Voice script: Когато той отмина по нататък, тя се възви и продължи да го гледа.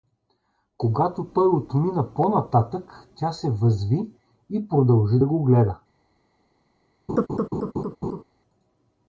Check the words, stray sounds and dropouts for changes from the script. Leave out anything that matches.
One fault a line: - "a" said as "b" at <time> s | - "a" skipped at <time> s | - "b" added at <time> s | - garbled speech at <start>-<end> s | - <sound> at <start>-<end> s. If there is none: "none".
- laugh at 7.1-8.2 s